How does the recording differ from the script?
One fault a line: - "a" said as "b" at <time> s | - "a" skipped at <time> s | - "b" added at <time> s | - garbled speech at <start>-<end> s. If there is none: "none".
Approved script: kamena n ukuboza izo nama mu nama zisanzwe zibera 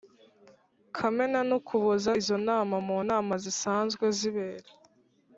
none